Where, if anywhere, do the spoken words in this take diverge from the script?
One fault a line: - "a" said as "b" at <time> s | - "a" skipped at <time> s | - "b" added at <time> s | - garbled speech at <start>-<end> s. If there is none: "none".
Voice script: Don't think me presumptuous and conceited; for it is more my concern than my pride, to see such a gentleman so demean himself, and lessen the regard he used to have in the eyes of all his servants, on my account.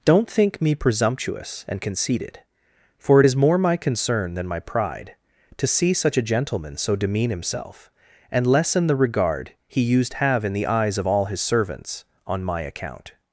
- "to" skipped at 10.1 s